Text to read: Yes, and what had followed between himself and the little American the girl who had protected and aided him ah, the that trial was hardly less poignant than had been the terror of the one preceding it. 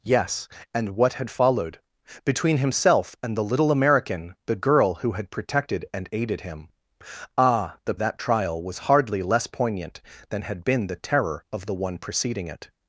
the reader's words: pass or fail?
pass